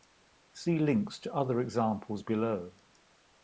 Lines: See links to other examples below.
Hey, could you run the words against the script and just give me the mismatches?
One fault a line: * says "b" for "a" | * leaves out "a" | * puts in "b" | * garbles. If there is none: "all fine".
all fine